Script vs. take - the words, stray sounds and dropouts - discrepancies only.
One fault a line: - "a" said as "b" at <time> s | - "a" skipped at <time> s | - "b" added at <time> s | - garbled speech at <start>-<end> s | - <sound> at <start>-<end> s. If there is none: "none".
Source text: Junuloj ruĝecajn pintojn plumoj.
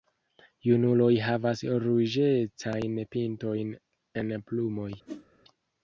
- "havas" added at 1.2 s
- "en" added at 4.2 s
- whoosh at 5.1-5.3 s